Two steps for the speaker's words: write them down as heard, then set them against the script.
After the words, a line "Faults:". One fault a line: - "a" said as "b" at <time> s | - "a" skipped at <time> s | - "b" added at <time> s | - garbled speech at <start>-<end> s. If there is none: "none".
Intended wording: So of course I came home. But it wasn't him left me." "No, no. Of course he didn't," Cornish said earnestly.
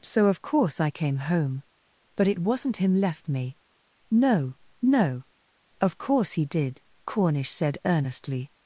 So of course I came home. But it wasn't him left me." "No, no. Of course he did," Cornish said earnestly.
Faults:
- "didn't" said as "did" at 6.5 s